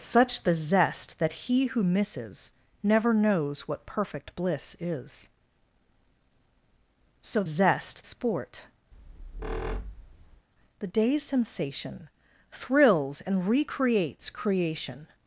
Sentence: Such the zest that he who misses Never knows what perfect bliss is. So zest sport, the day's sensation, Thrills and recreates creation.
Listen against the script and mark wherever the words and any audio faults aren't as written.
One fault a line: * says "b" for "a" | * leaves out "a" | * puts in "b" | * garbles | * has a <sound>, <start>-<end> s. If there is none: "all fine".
* has a squeak, 8.9-10.5 s